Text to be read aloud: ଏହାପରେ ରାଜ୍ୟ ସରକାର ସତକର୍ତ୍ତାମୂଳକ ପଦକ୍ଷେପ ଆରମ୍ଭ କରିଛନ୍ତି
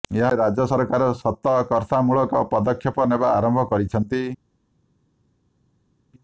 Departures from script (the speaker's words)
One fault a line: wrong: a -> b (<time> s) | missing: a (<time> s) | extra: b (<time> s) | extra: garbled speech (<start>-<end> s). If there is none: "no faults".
extra: ନେବା (3.1 s)